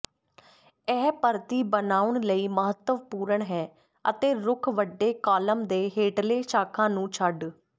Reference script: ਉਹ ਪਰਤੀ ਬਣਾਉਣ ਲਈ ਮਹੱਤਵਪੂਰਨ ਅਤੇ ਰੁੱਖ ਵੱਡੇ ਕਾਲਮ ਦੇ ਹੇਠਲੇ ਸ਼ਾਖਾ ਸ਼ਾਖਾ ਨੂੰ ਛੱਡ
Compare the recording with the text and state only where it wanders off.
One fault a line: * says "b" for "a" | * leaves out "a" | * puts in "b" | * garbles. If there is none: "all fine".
* says "ਇਹ" for "ਉਹ"
* puts in "ਹੈ"
* leaves out "ਸ਼ਾਖਾ"